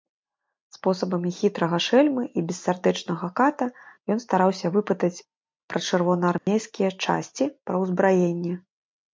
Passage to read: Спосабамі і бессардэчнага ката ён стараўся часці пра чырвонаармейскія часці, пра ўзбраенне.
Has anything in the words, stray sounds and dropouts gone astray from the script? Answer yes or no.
yes